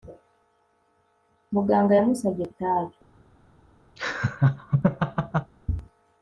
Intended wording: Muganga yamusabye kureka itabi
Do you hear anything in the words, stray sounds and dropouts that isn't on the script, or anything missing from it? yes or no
yes